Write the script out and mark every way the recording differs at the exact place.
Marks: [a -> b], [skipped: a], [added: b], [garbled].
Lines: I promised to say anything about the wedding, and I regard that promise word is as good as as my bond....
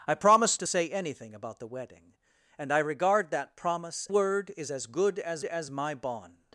I promised to say anything about the wedding, and I regard that promise word is as good as as my bond....